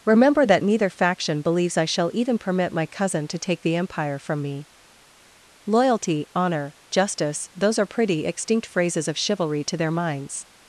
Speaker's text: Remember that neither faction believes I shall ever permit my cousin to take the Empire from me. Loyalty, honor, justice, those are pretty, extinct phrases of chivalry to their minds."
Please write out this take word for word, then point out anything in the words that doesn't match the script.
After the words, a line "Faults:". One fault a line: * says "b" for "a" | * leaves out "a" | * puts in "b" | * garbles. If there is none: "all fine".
Remember that neither faction believes I shall even permit my cousin to take the Empire from me. Loyalty, honor, justice, those are pretty, extinct phrases of chivalry to their minds."
Faults:
* says "even" for "ever"